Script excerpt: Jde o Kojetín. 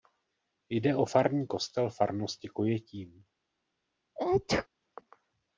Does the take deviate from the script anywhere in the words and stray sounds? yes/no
yes